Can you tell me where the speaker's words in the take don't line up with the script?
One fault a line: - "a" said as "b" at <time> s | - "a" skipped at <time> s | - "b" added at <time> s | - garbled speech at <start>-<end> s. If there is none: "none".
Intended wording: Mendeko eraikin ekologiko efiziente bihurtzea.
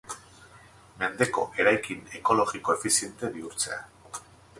none